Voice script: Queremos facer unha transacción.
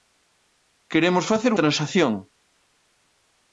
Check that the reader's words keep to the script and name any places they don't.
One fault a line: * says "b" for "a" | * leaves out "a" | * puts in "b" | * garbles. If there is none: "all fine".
* leaves out "unha"